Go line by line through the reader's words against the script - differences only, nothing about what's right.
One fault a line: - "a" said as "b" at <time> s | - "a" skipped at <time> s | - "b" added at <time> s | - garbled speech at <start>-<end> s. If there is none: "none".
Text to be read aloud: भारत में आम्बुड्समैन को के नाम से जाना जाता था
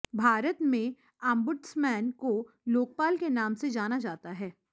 - "लोकपाल" added at 2.7 s
- "था" said as "है" at 4.3 s